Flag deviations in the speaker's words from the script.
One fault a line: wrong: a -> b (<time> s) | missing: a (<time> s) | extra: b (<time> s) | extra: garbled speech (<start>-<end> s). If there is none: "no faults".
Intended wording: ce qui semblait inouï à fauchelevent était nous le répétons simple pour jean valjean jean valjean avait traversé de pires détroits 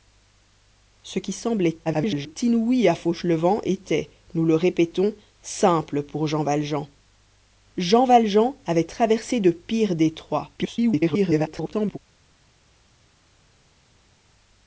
extra: garbled speech (1.8-2.4 s)
extra: garbled speech (10.6-12.0 s)